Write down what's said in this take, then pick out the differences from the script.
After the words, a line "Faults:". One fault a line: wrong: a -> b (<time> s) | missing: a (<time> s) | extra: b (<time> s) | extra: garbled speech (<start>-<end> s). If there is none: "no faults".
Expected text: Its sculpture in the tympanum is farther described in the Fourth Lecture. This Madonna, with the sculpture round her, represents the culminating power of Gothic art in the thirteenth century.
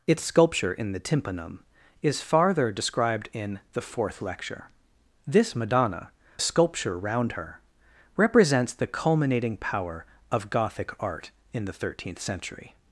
Its sculpture in the tympanum is farther described in the Fourth Lecture. This Madonna, sculpture round her, represents the culminating power of Gothic art in the thirteenth century.
Faults:
missing: with the (6.1 s)